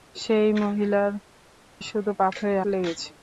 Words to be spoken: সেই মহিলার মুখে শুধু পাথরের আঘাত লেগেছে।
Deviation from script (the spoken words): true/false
true